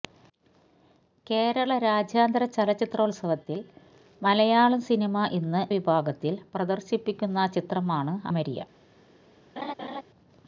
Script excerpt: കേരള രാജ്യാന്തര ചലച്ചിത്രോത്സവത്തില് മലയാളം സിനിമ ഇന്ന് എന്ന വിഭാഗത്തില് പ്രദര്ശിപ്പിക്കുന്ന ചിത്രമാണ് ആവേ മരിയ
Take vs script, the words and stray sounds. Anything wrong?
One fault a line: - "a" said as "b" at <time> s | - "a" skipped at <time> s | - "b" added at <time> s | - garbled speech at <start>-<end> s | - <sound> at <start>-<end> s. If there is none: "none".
- "എന്ന" skipped at 5.7 s
- "ആവേ" skipped at 8.1 s
- laugh at 9.6-10.0 s